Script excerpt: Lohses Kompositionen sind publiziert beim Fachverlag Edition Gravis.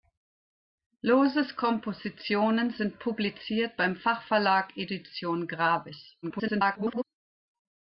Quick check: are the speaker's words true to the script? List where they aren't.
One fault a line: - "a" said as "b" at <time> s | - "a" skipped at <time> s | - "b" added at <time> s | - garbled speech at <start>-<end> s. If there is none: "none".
- garbled speech at 6.2-7.0 s